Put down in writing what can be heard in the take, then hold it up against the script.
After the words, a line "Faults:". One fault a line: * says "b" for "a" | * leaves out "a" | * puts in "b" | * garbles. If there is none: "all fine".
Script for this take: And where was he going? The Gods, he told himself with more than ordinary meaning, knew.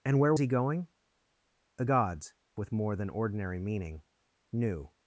And where he going? The Gods, with more than ordinary meaning, knew.
Faults:
* leaves out "was"
* leaves out "he told himself"